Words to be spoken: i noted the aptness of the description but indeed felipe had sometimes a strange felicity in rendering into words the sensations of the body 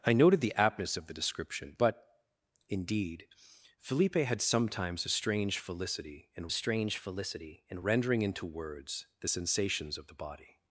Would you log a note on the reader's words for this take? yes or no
yes